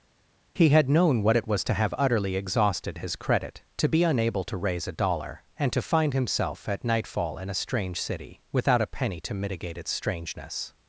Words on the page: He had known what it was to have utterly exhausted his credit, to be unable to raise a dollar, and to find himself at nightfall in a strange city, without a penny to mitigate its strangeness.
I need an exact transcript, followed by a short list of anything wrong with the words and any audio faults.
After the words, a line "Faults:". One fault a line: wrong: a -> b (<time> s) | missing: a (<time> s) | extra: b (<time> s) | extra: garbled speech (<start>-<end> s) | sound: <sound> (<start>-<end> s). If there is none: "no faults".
He had known what it was to have utterly exhausted his credit, to be unable to raise a dollar, and to find himself at nightfall in a strange city, without a penny to mitigate its strangeness.
Faults:
no faults